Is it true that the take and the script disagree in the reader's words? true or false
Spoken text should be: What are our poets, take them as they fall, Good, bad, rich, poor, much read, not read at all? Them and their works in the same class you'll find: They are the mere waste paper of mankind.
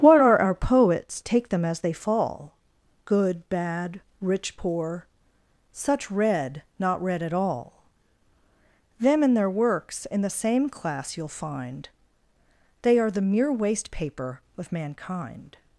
true